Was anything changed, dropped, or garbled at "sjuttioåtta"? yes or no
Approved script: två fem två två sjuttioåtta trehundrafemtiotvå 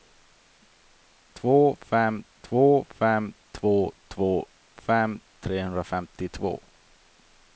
yes